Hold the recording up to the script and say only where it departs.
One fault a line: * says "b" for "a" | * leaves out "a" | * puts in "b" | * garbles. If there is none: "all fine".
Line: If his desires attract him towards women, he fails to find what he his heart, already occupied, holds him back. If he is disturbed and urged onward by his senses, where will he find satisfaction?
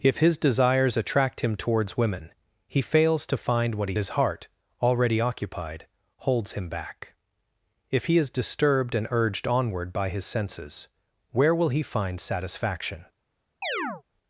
all fine